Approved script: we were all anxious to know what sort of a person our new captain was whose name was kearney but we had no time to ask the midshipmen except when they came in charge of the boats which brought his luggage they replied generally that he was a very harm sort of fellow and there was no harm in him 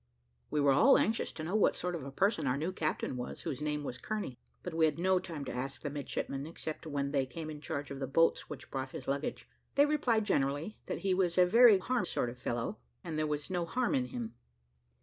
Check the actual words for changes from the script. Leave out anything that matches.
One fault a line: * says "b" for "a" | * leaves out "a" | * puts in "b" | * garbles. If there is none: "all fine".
all fine